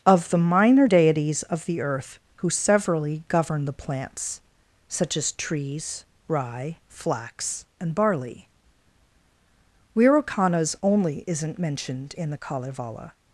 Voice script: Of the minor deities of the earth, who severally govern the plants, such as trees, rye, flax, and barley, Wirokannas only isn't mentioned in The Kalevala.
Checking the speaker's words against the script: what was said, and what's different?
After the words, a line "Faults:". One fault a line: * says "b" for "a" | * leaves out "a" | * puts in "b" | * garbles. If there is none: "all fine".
Of the minor deities of the earth, who severally govern the plants, such as trees, rye, flax, and barley, Wirokannas only isn't mentioned in The Kalevala.
Faults:
all fine